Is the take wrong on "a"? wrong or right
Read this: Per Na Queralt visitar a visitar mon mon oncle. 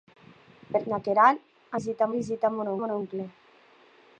right